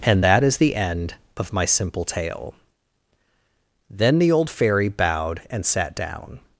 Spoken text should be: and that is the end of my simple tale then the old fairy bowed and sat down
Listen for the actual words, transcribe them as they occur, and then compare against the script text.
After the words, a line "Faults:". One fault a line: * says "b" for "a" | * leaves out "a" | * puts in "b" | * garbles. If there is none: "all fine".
and that is the end of my simple tale then the old fairy bowed and sat down
Faults:
all fine